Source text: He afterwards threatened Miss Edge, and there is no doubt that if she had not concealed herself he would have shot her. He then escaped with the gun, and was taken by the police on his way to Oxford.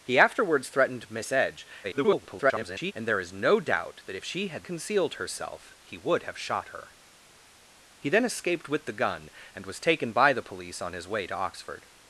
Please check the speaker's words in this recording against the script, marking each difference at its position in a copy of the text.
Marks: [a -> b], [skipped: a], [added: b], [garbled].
He afterwards threatened Miss Edge, [garbled] and there is no doubt that if she had [skipped: not] concealed herself he would have shot her. He then escaped with the gun, and was taken by the police on his way to Oxford.